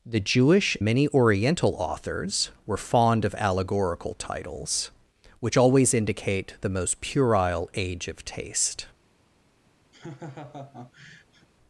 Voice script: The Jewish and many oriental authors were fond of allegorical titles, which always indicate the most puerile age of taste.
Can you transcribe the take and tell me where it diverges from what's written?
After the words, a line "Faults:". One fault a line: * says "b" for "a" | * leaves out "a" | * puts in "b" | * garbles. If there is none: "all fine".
The Jewish many oriental authors were fond of allegorical titles, which always indicate the most puerile age of taste.
Faults:
* leaves out "and"